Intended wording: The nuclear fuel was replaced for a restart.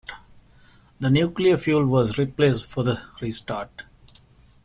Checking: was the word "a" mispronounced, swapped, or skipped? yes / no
yes